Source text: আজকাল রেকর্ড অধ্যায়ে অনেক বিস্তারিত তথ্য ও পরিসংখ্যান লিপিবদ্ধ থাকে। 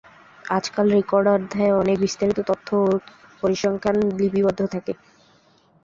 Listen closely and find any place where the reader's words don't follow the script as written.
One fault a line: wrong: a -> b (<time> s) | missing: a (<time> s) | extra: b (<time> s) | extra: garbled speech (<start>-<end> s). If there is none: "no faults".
no faults